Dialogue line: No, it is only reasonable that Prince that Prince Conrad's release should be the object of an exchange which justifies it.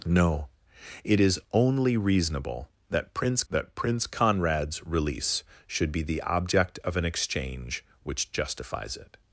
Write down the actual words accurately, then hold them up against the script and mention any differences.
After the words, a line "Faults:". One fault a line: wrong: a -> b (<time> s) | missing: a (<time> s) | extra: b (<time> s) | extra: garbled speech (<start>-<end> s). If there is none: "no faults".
No, it is only reasonable that Prince that Prince Conrad's release should be the object of an exchange which justifies it.
Faults:
no faults